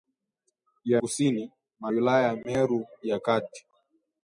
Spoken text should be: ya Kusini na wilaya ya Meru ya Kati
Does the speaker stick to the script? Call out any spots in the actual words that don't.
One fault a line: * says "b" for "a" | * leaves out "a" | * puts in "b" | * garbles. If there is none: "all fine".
all fine